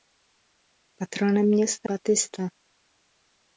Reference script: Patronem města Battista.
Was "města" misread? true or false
false